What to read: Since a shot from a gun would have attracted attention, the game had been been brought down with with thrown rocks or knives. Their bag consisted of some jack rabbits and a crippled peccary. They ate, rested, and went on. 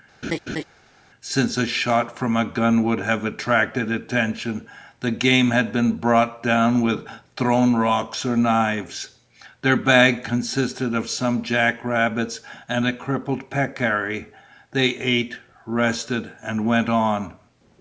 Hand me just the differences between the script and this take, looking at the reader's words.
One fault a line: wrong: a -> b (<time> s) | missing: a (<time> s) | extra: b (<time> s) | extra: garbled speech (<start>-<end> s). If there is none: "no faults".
missing: been (6.0 s)
missing: with (7.1 s)